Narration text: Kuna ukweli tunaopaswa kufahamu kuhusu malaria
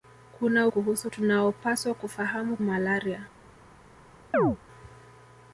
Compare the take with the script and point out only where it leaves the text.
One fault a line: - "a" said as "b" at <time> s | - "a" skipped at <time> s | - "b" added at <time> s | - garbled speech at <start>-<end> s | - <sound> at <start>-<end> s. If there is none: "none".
- "ukweli" said as "kuhusu" at 0.7 s
- "kuhusu" skipped at 2.6 s
- chirp at 4.3-4.6 s